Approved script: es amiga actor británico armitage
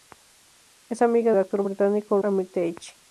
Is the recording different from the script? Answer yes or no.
no